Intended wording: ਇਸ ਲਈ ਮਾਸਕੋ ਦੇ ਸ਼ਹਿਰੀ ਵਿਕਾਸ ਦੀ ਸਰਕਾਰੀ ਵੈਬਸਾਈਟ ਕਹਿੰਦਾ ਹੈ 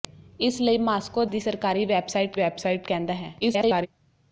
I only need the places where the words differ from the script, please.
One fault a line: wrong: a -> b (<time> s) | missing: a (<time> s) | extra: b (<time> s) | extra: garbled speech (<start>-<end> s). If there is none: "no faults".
missing: ਦੇ ਸ਼ਹਿਰੀ ਵਿਕਾਸ (1.2 s)
extra: ਵੈਬਸਾਈਟ (2.3 s)
extra: garbled speech (3.4-3.9 s)